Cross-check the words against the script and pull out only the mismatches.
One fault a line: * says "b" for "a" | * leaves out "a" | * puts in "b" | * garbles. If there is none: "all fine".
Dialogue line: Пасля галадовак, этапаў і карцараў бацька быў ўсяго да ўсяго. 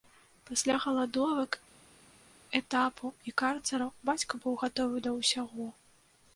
* says "гатовы" for "ўсяго"